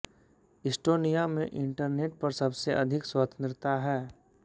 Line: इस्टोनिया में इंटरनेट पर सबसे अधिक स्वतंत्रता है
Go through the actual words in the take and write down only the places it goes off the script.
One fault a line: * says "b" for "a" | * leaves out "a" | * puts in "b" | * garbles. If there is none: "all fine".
all fine